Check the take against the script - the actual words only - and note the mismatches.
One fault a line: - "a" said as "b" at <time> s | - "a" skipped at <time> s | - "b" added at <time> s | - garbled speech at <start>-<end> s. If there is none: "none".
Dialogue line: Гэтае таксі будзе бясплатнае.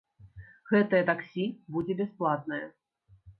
none